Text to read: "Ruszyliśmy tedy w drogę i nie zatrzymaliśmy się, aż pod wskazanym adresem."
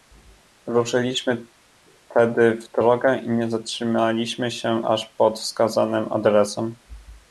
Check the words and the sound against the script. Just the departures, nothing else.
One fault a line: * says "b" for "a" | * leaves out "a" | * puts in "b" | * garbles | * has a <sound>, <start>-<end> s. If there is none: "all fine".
all fine